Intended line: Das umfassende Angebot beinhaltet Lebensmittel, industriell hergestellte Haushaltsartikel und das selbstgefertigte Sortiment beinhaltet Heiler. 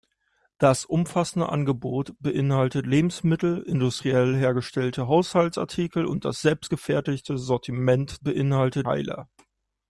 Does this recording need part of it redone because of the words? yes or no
no